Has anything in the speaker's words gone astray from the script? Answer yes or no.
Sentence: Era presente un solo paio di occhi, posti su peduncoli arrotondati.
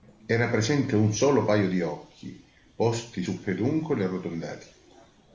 no